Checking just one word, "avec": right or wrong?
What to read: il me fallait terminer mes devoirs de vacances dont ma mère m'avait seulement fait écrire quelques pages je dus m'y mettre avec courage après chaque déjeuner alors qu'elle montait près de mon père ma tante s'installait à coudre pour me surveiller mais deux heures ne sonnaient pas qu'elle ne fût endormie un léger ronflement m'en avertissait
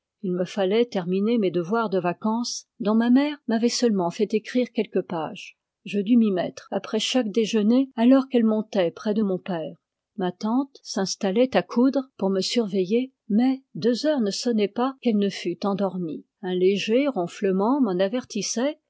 wrong